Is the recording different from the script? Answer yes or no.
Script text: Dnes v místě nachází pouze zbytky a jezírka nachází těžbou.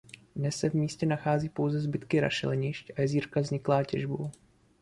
yes